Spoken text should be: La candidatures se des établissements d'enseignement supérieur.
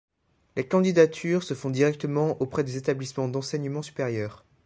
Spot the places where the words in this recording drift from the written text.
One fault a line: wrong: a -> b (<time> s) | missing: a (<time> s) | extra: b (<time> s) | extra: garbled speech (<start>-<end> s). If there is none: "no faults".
wrong: La -> Les (0.6 s)
extra: font directement auprès (1.5 s)